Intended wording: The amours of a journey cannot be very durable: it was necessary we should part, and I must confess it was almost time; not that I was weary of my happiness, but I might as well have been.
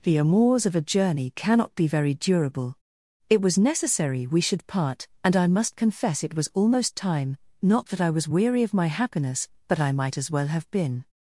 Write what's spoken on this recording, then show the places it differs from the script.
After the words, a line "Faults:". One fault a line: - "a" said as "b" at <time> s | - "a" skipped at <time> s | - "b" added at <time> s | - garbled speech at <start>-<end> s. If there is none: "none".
The amours of a journey cannot be very durable: it was necessary we should part, and I must confess it was almost time; not that I was weary of my happiness, but I might as well have been.
Faults:
none